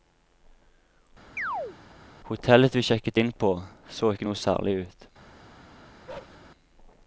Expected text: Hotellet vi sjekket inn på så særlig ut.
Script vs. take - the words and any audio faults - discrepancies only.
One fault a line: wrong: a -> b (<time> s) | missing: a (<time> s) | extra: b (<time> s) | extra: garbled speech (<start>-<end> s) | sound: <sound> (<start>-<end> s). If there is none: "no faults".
sound: chirp (1.4-1.8 s)
extra: ikke noe (4.1 s)
sound: bark (6.1-6.4 s)